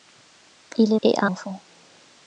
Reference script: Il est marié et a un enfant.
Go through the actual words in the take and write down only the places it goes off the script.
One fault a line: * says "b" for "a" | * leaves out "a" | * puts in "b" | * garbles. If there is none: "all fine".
* leaves out "marié"
* leaves out "un"